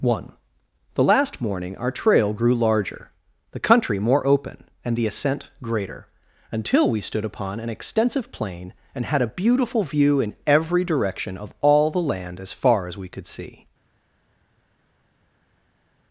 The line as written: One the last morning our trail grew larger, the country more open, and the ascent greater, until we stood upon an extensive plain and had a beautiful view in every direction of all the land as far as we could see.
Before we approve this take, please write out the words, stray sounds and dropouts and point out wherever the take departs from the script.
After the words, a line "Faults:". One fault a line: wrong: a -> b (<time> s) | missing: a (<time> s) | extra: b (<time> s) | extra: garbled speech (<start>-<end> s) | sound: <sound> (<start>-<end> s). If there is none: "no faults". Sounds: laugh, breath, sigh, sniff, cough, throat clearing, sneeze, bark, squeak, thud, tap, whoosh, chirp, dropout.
One the last morning our trail grew larger, the country more open, and the ascent greater, until we stood upon an extensive plain and had a beautiful view in every direction of all the land as far as we could see.
Faults:
no faults